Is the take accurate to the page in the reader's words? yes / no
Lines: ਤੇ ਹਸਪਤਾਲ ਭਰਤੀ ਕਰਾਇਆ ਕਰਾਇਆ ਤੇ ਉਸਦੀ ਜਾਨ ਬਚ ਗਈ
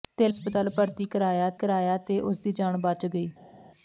yes